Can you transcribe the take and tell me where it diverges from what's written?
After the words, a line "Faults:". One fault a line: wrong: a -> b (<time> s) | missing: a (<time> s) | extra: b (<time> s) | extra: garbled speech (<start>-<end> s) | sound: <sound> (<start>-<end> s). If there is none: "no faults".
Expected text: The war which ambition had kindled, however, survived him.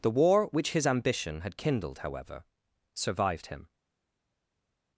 The war which his ambition had kindled, however, survived him.
Faults:
extra: his (0.7 s)